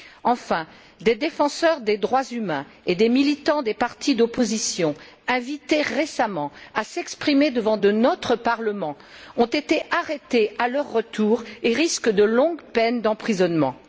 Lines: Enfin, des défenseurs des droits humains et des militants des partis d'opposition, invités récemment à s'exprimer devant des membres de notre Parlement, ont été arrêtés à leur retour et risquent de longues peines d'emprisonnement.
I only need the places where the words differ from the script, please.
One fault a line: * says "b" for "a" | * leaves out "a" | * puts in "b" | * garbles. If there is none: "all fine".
* leaves out "des membres"